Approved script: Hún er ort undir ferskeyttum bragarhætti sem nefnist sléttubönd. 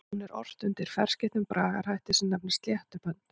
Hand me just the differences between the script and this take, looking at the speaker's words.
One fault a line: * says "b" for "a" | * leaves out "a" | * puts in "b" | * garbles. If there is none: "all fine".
all fine